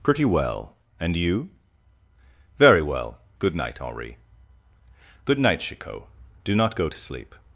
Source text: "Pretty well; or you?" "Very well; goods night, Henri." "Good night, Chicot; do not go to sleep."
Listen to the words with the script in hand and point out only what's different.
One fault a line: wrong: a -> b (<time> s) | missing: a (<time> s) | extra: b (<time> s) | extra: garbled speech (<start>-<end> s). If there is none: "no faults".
wrong: or -> and (1.0 s)
wrong: goods -> good (3.4 s)